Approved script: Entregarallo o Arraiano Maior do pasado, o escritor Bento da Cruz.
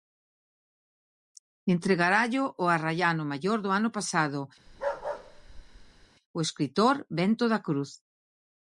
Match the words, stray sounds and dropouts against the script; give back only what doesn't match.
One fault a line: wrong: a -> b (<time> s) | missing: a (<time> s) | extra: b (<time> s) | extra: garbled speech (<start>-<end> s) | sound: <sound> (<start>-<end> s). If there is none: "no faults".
extra: ano (3.8 s)
sound: bark (4.7-6.1 s)